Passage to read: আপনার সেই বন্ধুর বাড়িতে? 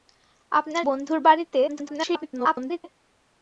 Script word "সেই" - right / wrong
wrong